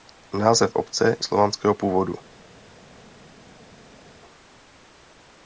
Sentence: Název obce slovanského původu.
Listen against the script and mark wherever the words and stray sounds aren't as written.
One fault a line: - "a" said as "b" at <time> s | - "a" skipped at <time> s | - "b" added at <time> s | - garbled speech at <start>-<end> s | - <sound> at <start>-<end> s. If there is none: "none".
none